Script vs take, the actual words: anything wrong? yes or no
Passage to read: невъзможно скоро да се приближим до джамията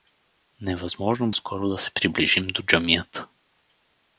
no